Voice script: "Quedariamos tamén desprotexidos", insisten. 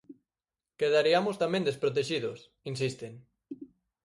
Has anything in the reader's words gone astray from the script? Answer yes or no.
no